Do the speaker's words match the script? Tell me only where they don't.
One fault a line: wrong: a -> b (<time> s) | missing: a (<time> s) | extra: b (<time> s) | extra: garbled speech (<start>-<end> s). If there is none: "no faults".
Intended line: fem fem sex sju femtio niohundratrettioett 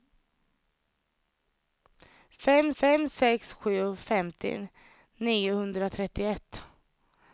no faults